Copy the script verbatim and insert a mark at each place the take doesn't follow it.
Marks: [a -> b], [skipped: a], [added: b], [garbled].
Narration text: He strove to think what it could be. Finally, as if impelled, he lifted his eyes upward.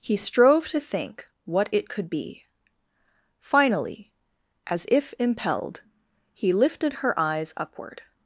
He strove to think what it could be. Finally, as if impelled, he lifted [his -> her] eyes upward.